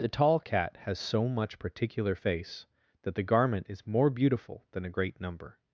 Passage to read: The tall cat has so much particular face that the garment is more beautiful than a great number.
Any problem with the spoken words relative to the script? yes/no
no